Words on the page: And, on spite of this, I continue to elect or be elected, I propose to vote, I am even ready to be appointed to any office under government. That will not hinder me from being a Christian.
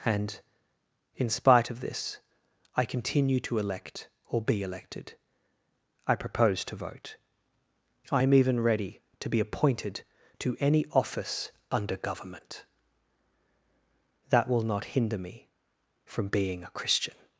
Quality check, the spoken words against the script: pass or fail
fail